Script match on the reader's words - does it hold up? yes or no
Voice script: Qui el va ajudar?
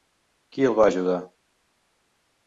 yes